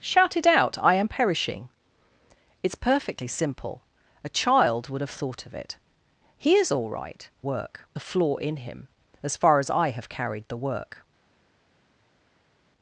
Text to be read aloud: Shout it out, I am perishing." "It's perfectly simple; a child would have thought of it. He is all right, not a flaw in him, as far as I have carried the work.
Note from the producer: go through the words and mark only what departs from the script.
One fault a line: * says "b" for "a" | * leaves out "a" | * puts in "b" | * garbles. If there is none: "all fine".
* says "work" for "not"